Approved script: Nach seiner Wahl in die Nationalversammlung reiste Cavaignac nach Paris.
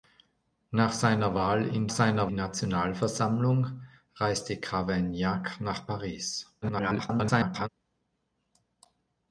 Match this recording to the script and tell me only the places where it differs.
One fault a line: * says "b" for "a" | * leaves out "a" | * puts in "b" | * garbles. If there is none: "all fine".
* says "seiner" for "die"
* garbles